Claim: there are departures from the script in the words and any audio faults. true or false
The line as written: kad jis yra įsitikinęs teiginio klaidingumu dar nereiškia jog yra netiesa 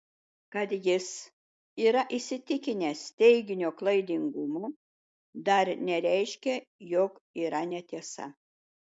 false